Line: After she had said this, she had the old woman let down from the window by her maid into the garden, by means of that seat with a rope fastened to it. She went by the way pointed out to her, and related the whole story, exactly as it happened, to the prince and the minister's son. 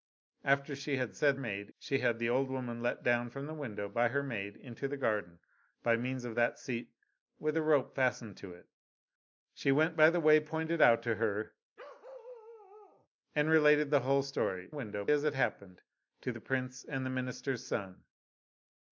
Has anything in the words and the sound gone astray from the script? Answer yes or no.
yes